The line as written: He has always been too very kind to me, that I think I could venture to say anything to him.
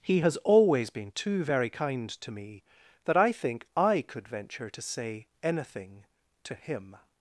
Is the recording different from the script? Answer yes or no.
no